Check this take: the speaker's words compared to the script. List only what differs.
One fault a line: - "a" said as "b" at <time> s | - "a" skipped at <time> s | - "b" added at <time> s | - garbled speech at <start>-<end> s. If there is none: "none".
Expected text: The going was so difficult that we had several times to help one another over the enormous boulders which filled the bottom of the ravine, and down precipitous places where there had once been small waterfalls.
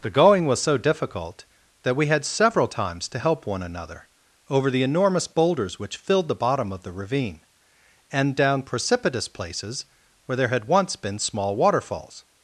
none